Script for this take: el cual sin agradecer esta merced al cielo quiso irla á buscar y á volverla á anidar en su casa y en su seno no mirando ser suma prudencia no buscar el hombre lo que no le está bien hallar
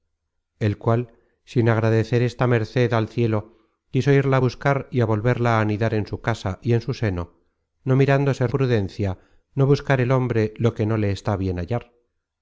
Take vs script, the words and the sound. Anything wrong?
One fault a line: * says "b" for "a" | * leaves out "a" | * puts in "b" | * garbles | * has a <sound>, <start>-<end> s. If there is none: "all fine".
* leaves out "suma"